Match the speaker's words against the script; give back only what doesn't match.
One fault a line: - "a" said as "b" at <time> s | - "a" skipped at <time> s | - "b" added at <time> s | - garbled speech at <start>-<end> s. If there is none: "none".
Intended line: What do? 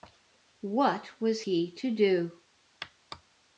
- "was he to" added at 1.2 s